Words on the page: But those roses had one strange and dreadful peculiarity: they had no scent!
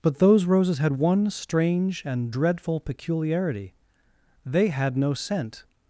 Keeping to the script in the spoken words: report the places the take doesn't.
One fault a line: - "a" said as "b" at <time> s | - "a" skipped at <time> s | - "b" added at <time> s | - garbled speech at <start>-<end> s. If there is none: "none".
none